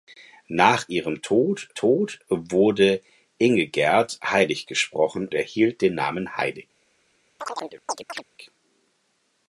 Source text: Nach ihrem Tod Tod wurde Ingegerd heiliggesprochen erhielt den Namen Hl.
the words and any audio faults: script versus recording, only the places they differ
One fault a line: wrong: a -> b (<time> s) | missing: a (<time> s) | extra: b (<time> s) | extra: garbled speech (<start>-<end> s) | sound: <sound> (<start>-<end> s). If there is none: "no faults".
sound: chirp (7.4-8.2 s)